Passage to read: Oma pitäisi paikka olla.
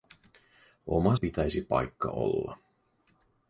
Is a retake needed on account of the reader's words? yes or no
no